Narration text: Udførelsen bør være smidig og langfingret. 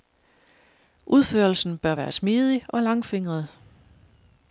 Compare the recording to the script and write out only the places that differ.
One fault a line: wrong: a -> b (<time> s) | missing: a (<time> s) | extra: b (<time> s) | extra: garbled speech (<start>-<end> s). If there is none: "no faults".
no faults